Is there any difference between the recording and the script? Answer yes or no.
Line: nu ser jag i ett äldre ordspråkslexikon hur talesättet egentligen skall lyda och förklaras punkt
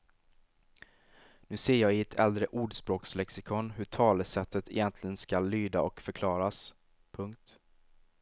no